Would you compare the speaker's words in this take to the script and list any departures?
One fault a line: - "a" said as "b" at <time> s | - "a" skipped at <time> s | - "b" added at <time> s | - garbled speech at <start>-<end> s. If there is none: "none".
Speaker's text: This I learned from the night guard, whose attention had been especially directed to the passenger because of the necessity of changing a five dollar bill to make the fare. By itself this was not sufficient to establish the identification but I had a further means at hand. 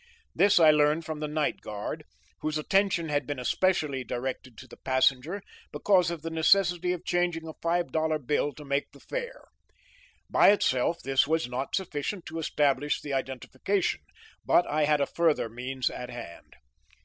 none